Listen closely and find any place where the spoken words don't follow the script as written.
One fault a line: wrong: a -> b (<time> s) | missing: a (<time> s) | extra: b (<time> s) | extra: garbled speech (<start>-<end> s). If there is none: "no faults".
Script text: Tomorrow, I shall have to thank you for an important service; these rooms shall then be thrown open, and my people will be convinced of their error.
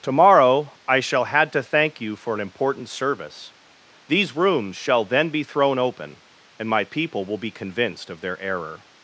wrong: have -> had (1.2 s)